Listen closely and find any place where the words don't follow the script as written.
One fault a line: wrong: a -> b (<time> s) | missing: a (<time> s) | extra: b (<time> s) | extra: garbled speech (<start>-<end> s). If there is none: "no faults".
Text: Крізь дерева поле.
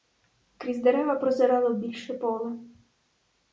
extra: прозирало більше (1.1 s)